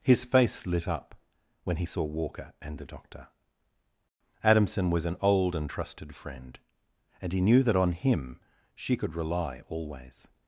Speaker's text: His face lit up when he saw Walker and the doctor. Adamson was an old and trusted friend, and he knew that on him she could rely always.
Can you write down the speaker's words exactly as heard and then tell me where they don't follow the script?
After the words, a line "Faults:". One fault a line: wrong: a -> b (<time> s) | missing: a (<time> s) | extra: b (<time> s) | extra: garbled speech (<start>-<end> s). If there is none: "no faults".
His face lit up when he saw Walker and the doctor. Adamson was an old and trusted friend, and he knew that on him she could rely always.
Faults:
no faults